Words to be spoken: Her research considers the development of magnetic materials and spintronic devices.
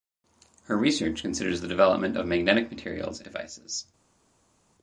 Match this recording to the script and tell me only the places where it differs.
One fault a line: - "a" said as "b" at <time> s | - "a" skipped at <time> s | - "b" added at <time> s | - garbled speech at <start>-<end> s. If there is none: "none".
- "and spintronic" skipped at 3.2 s